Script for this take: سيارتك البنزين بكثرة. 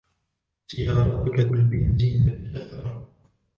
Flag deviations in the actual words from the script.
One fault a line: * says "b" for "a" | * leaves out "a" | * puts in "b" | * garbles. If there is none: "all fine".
all fine